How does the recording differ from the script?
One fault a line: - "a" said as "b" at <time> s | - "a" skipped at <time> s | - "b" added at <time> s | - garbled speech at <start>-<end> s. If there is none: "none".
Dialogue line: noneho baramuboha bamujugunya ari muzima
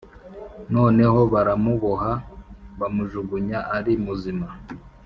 none